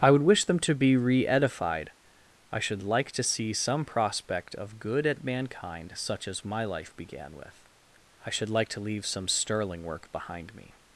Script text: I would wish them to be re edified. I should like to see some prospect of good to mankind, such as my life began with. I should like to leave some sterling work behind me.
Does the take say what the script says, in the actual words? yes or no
no